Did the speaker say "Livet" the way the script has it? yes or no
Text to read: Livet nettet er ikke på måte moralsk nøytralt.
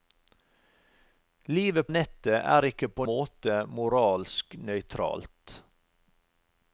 yes